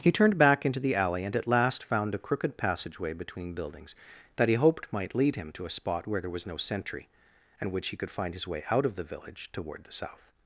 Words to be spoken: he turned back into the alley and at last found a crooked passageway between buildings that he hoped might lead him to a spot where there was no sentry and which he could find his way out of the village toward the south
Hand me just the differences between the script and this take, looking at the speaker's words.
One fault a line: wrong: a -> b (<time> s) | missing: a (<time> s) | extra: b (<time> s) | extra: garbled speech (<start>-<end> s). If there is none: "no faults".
no faults